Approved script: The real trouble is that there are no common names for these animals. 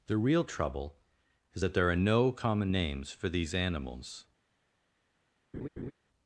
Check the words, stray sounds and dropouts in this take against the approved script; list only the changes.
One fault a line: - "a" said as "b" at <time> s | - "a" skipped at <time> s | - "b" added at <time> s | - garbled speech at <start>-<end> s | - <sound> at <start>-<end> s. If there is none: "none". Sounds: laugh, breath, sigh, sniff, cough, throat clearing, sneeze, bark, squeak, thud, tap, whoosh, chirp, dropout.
- laugh at 5.5-5.9 s